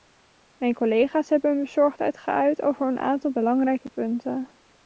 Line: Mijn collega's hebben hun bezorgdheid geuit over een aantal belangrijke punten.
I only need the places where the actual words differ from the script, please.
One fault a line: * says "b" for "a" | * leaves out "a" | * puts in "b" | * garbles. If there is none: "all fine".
all fine